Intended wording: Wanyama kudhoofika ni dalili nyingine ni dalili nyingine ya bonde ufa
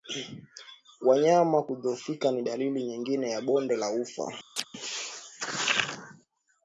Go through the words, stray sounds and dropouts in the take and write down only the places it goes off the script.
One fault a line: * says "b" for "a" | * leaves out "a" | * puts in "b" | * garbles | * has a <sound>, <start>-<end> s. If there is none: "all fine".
* leaves out "ni dalili nyingine"
* puts in "la"
* has a chirp, 4.6-4.7 s